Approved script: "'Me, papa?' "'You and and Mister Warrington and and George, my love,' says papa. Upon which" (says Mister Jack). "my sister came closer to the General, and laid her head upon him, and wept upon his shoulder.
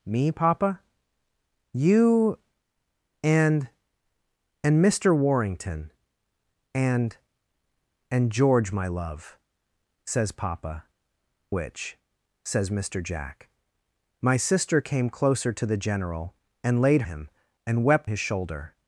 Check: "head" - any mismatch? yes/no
yes